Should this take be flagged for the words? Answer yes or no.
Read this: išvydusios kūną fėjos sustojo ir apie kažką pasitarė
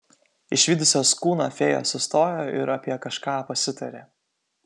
no